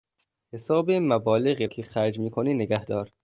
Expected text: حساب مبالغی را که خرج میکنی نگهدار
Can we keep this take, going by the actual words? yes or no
no